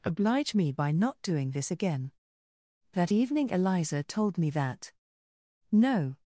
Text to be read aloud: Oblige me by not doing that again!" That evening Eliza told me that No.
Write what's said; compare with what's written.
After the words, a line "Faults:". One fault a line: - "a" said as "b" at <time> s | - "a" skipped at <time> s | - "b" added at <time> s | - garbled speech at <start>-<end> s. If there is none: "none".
Oblige me by not doing this again!" That evening Eliza told me that No.
Faults:
- "that" said as "this" at 1.5 s